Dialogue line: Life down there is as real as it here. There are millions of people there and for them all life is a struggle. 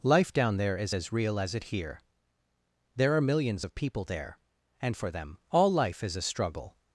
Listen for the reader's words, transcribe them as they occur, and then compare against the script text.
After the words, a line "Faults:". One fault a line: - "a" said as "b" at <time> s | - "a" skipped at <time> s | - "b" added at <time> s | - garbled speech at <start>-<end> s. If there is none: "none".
Life down there is as real as it here. There are millions of people there and for them all life is a struggle.
Faults:
none